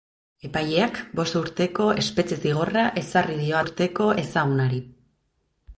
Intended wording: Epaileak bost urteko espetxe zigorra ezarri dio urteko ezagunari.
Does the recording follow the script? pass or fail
pass